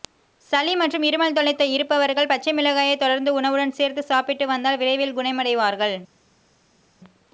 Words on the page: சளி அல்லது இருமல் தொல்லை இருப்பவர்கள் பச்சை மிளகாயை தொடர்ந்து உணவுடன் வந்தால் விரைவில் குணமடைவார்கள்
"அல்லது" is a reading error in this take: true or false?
true